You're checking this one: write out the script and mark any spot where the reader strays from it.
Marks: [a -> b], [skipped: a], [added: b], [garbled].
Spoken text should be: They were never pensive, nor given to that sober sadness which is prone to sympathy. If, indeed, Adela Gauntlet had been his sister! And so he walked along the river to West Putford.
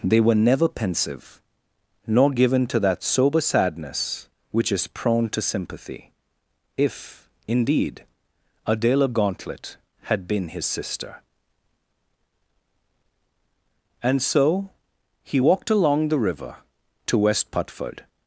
They were never pensive, nor given to that sober sadness which is prone to sympathy. If, indeed, Adela Gauntlet had been his sister! And so he walked along the river to West Putford.